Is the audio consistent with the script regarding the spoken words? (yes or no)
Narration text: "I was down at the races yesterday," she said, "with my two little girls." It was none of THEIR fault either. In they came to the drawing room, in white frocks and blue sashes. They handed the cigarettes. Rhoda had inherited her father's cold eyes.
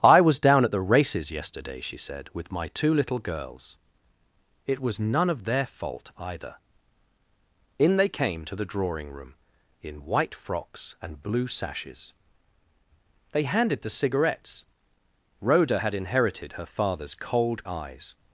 yes